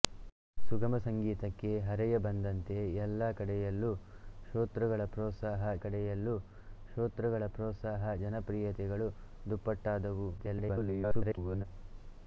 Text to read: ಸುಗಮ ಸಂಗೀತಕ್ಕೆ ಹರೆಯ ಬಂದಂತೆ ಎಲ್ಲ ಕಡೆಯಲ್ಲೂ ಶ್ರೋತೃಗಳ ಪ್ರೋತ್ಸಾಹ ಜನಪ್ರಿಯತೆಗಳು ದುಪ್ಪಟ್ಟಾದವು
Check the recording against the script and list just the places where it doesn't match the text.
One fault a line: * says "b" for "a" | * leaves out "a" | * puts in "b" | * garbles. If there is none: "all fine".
* puts in "ಕಡೆಯಲ್ಲೂ ಶ್ರೋತೃಗಳ ಪ್ರೋತ್ಸಾಹ"
* garbles